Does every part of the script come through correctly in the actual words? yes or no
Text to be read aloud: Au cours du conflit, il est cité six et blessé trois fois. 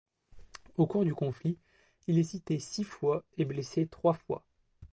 no